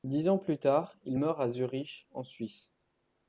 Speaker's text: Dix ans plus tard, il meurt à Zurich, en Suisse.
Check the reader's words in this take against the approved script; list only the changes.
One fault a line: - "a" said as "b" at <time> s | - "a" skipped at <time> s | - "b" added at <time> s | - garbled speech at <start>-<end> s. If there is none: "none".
none